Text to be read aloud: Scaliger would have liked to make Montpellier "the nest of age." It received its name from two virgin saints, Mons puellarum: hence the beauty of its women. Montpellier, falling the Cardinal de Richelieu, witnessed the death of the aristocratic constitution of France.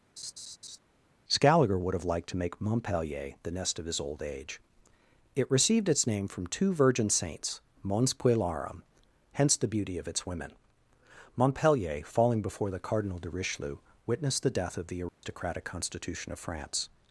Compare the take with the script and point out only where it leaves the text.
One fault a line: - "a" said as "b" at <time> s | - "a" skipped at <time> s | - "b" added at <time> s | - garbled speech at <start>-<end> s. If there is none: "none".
- "his old" added at 3.8 s
- "before" added at 12.4 s